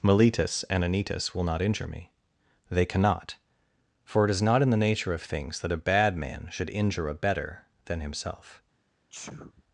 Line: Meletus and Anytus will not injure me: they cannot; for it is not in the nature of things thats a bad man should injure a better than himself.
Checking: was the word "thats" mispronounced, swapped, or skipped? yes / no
yes